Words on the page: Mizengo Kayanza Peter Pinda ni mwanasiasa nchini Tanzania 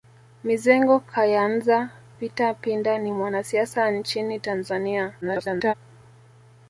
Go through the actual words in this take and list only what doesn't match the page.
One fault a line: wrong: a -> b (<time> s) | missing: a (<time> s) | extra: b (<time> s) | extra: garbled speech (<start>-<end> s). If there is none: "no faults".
extra: garbled speech (5.2-5.7 s)